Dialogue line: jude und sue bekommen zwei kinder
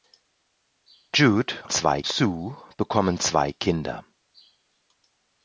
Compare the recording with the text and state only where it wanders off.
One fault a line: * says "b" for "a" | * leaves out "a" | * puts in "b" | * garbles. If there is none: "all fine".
* says "zwei" for "und"